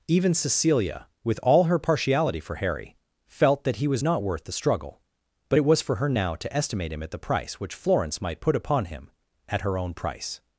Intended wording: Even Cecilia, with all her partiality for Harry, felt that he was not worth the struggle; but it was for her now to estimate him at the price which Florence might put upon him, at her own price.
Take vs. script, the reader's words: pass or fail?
pass